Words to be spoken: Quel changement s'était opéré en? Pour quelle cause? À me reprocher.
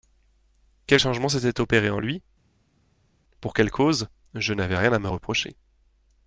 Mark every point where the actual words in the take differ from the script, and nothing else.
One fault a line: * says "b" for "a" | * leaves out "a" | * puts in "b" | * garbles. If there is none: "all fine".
* puts in "lui"
* puts in "Je n'avais rien"